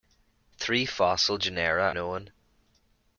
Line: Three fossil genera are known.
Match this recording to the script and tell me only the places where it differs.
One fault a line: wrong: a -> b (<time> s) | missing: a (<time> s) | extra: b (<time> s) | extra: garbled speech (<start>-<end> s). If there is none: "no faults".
missing: are (1.9 s)